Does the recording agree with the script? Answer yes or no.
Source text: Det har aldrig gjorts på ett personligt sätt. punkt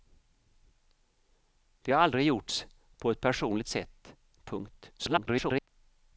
no